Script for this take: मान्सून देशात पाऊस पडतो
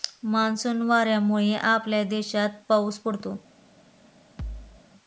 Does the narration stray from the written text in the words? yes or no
yes